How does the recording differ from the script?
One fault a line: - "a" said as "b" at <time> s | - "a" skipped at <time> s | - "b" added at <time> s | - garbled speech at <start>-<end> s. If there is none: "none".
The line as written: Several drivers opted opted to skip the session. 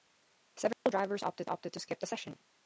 none